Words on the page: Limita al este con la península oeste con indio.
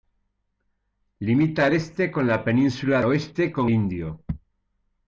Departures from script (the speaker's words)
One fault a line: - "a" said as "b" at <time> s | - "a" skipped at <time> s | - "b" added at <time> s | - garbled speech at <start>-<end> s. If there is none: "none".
none